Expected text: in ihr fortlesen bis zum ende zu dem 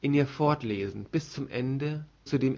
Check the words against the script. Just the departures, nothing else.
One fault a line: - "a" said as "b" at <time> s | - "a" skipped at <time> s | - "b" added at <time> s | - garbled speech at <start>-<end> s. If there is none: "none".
none